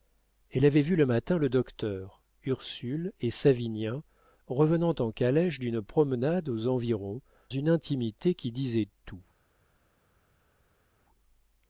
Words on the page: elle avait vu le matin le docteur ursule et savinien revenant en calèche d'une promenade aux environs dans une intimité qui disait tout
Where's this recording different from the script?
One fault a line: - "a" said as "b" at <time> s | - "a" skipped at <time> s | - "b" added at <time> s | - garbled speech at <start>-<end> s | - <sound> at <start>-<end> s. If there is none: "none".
- "dans" skipped at 7.2 s